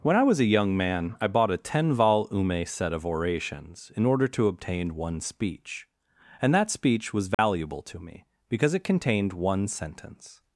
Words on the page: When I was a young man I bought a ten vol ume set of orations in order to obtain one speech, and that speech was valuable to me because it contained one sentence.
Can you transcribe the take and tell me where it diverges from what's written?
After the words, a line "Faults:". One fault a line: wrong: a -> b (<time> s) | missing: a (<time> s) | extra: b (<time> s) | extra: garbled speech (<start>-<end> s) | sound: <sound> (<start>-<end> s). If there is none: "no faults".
When I was a young man I bought a ten vol ume set of orations in order to obtain one speech, and that speech was valuable to me because it contained one sentence.
Faults:
sound: dropout (7.3-7.4 s)